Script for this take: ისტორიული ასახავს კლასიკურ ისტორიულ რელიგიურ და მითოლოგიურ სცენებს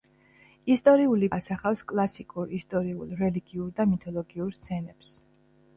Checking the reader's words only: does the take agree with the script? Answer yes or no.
yes